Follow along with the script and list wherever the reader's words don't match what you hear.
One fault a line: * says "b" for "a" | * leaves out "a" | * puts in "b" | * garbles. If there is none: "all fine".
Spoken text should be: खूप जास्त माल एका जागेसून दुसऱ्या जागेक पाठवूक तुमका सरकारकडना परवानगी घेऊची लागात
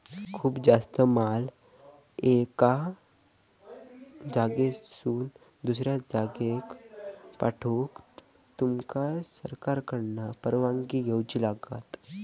all fine